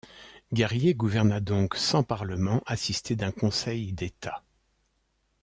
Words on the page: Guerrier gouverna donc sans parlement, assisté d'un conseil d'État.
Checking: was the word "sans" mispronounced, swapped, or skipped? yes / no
no